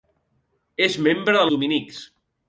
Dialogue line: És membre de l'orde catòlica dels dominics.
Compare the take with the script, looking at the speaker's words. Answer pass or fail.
fail